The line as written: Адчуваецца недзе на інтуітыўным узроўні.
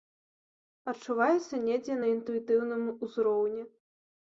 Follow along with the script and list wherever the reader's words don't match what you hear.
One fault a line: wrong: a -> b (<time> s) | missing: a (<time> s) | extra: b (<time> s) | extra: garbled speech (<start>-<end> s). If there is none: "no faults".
no faults